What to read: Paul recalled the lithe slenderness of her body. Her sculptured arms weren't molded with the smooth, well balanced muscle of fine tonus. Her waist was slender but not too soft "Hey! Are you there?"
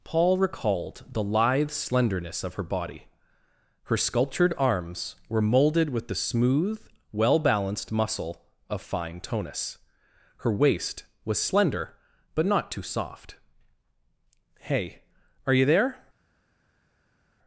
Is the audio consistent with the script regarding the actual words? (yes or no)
no